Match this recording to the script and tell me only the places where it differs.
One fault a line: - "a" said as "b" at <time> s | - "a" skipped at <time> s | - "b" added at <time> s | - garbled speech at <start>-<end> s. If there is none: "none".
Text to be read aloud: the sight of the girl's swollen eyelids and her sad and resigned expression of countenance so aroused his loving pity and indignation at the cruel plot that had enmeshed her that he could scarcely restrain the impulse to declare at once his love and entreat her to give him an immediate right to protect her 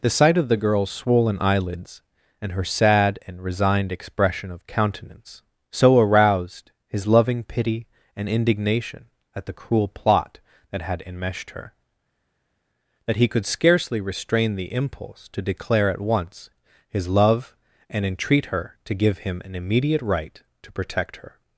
none